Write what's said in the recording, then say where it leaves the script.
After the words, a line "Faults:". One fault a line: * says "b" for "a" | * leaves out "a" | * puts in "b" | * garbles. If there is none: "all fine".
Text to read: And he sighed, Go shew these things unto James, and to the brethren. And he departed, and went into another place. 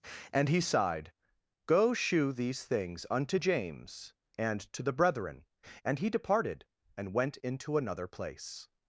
And he sighed, Go shew these things unto James, and to the brethren. And he departed, and went into another place.
Faults:
all fine